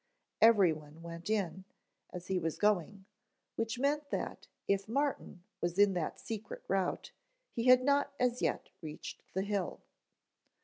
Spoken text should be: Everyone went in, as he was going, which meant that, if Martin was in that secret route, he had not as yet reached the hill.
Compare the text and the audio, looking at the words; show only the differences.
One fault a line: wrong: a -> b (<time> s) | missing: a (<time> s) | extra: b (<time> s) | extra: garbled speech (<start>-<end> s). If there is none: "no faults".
no faults